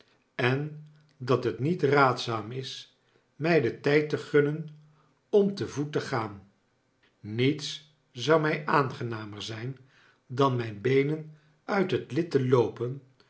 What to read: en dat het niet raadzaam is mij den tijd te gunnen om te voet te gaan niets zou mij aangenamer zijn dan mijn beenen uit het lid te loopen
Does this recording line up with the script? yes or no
yes